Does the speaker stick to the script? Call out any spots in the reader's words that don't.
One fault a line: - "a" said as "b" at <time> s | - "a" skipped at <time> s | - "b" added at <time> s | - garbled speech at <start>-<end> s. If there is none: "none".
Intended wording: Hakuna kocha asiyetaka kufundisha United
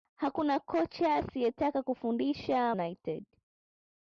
none